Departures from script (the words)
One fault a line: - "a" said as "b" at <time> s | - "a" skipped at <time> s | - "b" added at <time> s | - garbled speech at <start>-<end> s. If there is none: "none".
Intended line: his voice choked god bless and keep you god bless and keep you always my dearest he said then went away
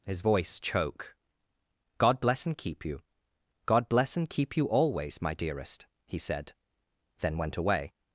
- "choked" said as "choke" at 0.6 s